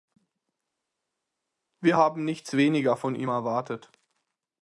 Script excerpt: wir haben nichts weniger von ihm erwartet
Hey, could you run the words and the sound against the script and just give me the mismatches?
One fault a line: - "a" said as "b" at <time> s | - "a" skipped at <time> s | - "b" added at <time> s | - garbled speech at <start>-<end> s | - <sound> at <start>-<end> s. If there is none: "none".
none